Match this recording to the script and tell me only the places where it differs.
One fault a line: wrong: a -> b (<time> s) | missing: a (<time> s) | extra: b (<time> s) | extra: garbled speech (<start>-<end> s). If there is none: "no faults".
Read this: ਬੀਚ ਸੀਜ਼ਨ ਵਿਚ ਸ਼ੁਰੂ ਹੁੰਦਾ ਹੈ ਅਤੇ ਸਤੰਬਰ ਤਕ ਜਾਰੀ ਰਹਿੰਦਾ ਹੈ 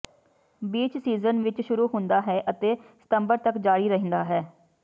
no faults